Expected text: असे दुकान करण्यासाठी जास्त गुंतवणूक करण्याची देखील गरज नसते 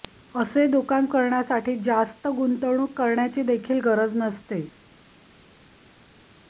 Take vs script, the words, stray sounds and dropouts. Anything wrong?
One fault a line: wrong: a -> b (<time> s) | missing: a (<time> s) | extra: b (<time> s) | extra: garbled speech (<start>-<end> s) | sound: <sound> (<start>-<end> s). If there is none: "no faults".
no faults